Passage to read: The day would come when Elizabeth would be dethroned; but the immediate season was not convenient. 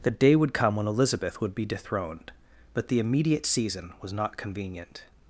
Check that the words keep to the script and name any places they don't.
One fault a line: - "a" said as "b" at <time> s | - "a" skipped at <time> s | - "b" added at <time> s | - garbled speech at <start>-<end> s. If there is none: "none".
none